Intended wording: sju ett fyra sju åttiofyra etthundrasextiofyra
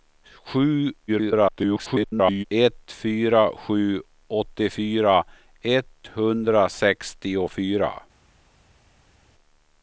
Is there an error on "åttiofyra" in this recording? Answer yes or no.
no